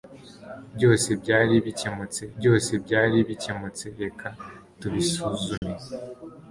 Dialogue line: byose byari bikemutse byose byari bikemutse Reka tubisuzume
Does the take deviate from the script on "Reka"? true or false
false